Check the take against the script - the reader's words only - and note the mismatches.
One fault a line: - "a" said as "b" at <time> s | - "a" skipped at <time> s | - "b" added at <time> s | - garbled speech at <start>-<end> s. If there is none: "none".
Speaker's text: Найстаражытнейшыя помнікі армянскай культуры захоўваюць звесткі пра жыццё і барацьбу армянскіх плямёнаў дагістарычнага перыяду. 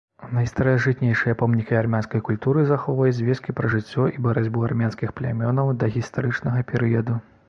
none